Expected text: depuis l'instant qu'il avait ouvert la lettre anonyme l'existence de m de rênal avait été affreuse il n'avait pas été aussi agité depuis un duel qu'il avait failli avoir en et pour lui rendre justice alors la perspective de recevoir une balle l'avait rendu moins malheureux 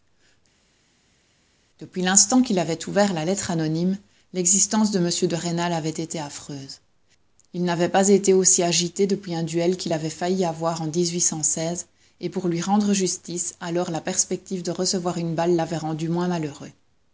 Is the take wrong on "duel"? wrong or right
right